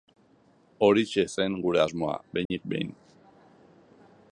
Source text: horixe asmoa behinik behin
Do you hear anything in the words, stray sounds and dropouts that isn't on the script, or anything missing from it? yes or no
yes